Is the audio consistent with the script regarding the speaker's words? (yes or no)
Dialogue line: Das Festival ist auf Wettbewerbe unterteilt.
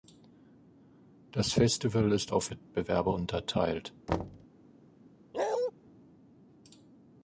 yes